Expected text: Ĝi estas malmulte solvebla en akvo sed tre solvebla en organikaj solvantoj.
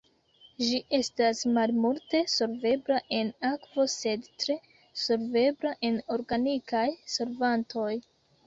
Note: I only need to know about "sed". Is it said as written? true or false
true